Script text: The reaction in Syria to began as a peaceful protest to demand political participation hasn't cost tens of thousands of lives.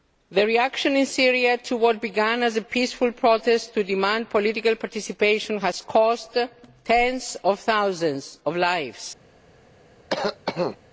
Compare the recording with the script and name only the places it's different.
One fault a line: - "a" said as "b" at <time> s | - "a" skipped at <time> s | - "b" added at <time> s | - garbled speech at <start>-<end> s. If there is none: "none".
- "what" added at 1.8 s
- "hasn't" said as "has" at 5.6 s